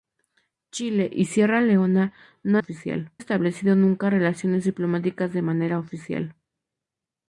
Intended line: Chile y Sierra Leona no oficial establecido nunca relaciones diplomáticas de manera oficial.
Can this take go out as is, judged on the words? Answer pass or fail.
pass